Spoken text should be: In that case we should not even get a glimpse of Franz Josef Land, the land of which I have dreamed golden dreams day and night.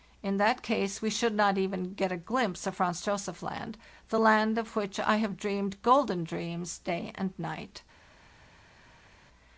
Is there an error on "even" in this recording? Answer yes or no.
no